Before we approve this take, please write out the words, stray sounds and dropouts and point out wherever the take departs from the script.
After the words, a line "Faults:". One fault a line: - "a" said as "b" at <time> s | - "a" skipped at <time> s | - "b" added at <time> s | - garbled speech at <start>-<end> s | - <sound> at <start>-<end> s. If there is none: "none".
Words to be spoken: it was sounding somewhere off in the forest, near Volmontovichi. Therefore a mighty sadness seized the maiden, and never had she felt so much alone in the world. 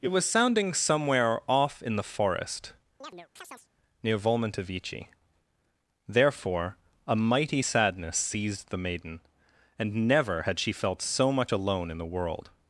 it was sounding somewhere off in the forest, near Volmontovichi. Therefore a mighty sadness seized the maiden, and never had she felt so much alone in the world.
Faults:
- chirp at 3.0-3.7 s